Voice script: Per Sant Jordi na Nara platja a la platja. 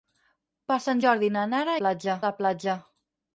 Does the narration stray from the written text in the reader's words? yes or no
no